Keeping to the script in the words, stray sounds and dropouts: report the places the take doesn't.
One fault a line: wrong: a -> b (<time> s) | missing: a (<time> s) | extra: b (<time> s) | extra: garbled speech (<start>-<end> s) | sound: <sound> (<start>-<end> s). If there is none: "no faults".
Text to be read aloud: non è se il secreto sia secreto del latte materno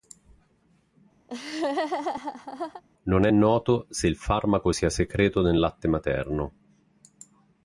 sound: laugh (1.3-2.8 s)
extra: noto (3.3 s)
wrong: secreto -> farmaco (4.1 s)
wrong: del -> nel (5.4 s)